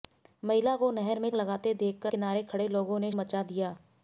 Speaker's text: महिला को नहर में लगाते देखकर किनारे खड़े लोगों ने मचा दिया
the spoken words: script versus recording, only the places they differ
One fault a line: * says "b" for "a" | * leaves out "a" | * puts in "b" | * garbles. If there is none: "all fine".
all fine